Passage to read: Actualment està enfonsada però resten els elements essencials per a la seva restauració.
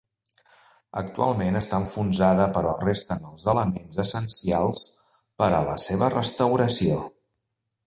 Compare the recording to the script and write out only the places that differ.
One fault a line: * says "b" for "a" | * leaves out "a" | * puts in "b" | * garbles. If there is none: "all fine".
all fine